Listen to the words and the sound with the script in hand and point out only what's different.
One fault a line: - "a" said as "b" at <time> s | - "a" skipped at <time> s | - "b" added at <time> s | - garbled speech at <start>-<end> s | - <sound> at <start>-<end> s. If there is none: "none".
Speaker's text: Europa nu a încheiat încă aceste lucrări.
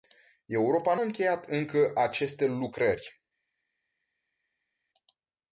- "nu" skipped at 0.9 s